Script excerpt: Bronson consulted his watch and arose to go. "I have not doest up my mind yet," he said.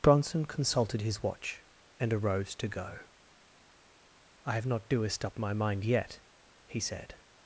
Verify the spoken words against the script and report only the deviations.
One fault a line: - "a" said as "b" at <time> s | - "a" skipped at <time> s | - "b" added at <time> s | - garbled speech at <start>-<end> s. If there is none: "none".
none